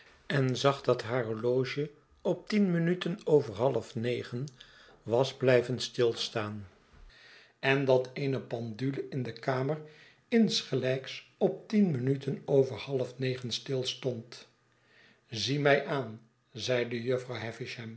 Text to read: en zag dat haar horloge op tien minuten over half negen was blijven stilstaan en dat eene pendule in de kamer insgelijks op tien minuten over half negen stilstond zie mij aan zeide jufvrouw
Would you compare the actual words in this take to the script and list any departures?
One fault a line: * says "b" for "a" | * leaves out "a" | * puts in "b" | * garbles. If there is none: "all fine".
all fine